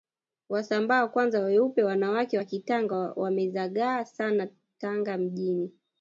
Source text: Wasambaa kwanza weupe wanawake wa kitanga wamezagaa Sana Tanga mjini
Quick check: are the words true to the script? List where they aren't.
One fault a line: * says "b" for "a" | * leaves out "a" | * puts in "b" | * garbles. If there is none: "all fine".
all fine